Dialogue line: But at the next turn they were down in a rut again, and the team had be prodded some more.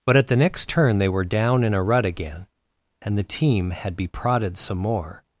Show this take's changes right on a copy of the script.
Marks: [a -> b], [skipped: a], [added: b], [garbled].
But at the next turn they were down in a rut again, and the team had be prodded some more.